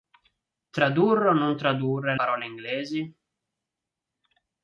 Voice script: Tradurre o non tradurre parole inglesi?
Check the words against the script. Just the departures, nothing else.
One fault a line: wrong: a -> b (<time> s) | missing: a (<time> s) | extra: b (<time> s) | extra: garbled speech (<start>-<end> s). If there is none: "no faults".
no faults